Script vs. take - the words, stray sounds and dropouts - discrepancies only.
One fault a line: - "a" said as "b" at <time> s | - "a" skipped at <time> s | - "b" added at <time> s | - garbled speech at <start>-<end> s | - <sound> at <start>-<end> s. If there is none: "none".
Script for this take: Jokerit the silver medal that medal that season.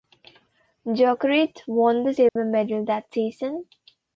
- "won" added at 1.7 s
- dropout at 2.3-2.4 s
- "medal that" skipped at 3.1 s